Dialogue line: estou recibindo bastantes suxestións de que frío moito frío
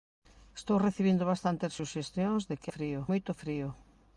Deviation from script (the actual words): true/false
false